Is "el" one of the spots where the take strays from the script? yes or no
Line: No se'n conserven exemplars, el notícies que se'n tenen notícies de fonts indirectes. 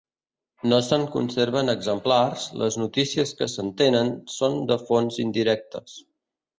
yes